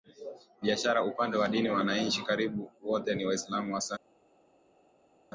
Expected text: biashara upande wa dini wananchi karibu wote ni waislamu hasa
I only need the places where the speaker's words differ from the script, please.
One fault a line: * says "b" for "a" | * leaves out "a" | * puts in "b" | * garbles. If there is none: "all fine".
all fine